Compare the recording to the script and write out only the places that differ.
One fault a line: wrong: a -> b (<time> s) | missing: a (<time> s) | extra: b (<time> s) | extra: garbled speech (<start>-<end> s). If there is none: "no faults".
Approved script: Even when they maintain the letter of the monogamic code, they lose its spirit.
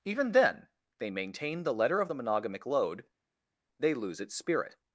wrong: when -> then (0.3 s)
wrong: code -> load (2.6 s)